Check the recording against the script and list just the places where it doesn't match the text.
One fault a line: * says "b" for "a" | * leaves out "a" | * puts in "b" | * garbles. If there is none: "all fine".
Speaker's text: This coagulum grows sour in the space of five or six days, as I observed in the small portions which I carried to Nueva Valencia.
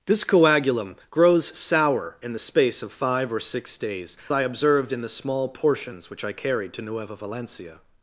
* leaves out "as"